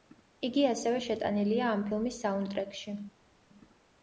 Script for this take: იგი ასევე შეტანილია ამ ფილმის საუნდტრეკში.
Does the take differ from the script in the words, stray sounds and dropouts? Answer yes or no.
no